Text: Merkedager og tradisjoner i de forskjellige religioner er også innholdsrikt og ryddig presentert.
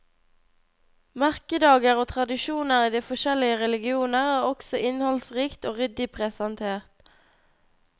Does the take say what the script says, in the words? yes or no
yes